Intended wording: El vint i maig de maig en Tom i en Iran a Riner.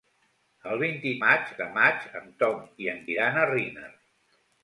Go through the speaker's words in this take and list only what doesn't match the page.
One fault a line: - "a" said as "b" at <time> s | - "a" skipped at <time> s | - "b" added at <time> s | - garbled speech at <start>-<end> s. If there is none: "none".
none